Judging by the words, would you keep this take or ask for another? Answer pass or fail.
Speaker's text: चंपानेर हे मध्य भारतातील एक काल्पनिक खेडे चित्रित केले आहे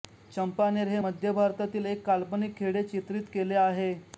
pass